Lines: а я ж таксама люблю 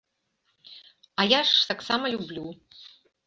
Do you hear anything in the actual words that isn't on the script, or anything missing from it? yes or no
no